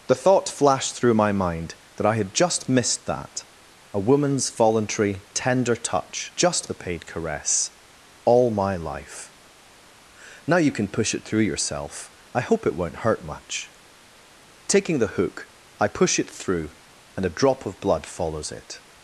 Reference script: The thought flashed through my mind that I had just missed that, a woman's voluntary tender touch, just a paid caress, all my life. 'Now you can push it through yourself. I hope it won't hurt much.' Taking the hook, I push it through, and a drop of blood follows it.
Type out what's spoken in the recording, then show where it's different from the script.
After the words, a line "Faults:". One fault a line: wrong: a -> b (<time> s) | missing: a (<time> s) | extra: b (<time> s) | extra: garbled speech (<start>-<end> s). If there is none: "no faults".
The thought flashed through my mind that I had just missed that, a woman's voluntary tender touch, just a paid caress, all my life. 'Now you can push it through yourself. I hope it won't hurt much.' Taking the hook, I push it through, and a drop of blood follows it.
Faults:
no faults